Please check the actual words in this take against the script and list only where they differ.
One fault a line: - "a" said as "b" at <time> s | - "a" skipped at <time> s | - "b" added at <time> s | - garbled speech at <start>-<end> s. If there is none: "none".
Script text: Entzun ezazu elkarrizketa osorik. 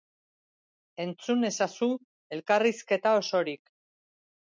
none